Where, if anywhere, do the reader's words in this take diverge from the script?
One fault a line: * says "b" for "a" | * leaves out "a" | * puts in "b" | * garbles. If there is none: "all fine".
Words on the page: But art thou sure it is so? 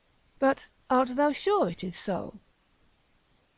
all fine